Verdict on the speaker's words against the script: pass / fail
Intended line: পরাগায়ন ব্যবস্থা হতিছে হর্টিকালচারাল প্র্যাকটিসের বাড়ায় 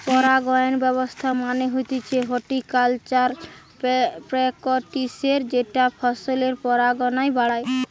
fail